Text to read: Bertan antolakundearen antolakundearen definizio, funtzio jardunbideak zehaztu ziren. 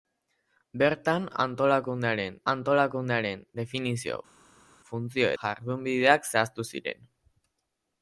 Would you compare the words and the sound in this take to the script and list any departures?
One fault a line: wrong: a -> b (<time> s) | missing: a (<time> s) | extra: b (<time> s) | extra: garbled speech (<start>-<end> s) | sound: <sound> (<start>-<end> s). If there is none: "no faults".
no faults